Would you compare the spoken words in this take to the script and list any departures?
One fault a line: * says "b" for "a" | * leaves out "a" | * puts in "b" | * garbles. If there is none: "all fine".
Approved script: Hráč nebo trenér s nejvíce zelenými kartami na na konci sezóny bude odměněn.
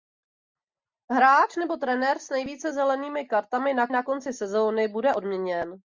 all fine